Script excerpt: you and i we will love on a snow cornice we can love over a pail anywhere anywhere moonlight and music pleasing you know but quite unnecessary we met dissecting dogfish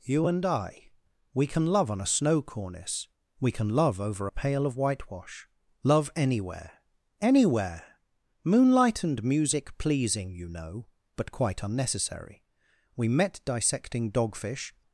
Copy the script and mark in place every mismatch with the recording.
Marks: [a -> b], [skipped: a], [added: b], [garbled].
you and i we [will -> can] love on a snow cornice we can love over a pail [added: of whitewash love] anywhere anywhere moonlight and music pleasing you know but quite unnecessary we met dissecting dogfish